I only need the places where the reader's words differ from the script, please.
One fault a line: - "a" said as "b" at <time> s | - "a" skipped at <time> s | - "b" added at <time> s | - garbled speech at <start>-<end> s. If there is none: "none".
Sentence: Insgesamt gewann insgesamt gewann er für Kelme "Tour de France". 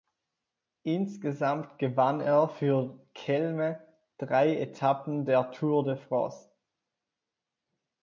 - "insgesamt gewann" skipped at 2.2 s
- "drei Etappen der" added at 4.2 s